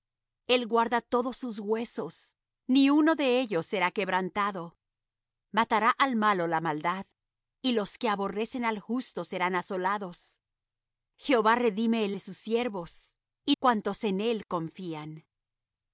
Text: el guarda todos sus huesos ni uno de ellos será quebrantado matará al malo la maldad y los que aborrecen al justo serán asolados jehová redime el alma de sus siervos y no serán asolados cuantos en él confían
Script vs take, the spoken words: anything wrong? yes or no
yes